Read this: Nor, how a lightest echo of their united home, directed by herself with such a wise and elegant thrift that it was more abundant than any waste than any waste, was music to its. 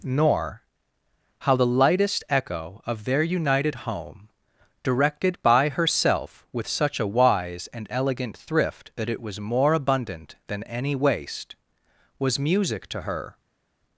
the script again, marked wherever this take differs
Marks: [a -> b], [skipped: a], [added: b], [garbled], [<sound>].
Nor, how [a -> the] lightest echo of their united home, directed by herself with such a wise and elegant thrift that it was more abundant than any waste [skipped: than any waste,] was music to [its. -> her]